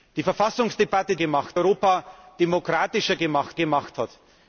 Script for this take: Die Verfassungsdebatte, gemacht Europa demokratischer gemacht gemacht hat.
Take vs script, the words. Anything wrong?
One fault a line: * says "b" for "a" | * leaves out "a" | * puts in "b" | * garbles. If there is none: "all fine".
all fine